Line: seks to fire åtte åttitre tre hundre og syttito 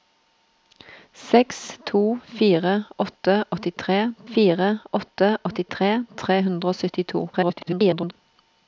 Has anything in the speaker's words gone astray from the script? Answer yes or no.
yes